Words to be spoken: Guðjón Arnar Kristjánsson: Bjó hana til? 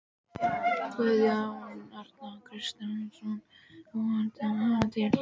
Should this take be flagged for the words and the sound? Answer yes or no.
no